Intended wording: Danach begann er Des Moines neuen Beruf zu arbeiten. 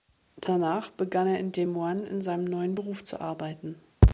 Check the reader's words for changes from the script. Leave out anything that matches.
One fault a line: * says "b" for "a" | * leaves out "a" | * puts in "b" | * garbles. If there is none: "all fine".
* puts in "in"
* puts in "in seinem"